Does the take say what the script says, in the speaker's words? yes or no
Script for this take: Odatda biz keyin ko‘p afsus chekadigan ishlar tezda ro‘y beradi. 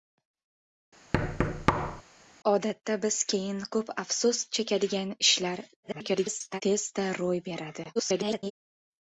no